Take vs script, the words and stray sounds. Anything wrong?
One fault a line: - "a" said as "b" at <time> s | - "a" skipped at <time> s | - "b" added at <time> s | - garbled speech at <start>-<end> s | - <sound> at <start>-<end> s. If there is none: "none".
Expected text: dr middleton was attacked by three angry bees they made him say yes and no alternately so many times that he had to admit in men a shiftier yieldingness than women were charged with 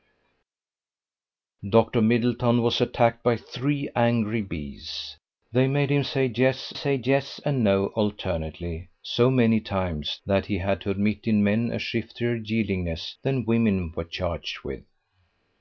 - "say yes" added at 6.7 s